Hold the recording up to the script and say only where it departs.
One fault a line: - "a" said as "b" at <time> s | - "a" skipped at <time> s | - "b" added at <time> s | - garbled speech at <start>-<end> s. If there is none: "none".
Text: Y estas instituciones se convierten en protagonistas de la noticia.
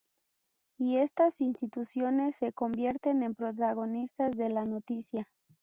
none